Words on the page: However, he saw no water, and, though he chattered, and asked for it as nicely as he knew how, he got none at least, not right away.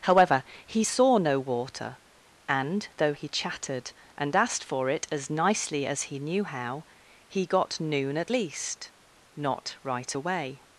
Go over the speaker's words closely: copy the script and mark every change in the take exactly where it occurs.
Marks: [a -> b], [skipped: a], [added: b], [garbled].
However, he saw no water, and, though he chattered, and asked for it as nicely as he knew how, he got [none -> noon] at least, not right away.